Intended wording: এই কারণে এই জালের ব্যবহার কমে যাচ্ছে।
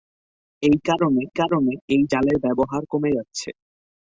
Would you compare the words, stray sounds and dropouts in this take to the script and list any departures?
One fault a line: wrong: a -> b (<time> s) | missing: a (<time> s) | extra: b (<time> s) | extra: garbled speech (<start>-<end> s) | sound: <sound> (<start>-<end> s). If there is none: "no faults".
extra: কারণে (1.4 s)